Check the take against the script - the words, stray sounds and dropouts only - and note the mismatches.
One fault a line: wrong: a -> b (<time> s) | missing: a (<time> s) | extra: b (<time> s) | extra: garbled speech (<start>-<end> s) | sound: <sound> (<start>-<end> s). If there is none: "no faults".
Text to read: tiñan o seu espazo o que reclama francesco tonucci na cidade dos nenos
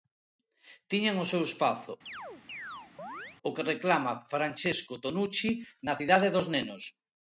sound: chirp (2.1-3.4 s)